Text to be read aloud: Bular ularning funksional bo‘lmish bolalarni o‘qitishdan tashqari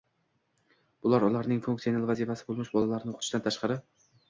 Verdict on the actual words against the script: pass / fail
fail